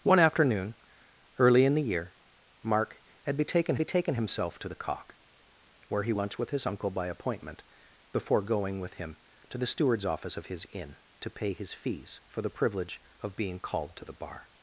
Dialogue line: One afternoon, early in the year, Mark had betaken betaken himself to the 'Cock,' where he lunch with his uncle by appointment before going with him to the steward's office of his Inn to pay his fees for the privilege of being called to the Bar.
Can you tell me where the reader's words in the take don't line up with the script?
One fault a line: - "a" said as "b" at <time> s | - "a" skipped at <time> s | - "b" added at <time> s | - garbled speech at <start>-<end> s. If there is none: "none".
none